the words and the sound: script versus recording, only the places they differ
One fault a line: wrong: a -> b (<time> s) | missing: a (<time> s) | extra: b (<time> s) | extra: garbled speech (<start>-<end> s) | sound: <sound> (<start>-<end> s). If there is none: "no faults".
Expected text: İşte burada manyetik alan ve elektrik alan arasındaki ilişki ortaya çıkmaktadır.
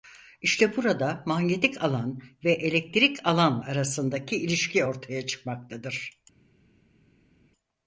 no faults